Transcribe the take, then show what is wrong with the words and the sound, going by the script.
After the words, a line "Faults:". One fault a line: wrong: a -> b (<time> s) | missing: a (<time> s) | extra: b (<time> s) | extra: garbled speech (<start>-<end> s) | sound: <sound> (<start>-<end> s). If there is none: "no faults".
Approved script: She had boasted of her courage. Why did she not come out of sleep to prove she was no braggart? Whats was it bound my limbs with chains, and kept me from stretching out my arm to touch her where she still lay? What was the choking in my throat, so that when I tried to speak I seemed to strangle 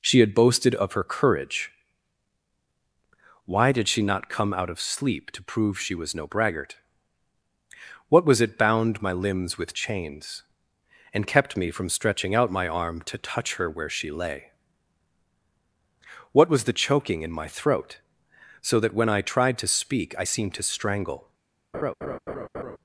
She had boasted of her courage. Why did she not come out of sleep to prove she was no braggart? What was it bound my limbs with chains, and kept me from stretching out my arm to touch her where she lay? What was the choking in my throat, so that when I tried to speak I seemed to strangle
Faults:
wrong: Whats -> What (8.1 s)
missing: still (14.1 s)
sound: laugh (21.7-22.8 s)